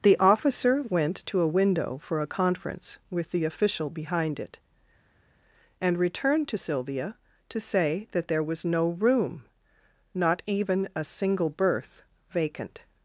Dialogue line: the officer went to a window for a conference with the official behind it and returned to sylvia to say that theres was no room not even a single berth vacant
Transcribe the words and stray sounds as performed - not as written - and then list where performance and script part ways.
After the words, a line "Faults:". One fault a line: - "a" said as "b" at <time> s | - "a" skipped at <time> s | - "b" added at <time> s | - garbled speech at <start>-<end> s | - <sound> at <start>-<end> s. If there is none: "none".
the officer went to a window for a conference with the official behind it and returned to sylvia to say that there was no room not even a single berth vacant
Faults:
- "theres" said as "there" at 8.3 s